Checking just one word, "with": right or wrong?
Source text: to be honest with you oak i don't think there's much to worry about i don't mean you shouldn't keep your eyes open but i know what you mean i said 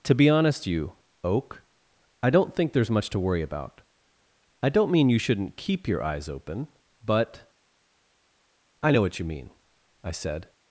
wrong